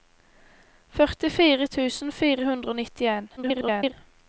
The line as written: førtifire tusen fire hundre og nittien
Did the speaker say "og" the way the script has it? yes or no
yes